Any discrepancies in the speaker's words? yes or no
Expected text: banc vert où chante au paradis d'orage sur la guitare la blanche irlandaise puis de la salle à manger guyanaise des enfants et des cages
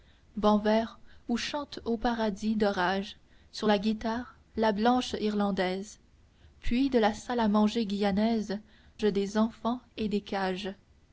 no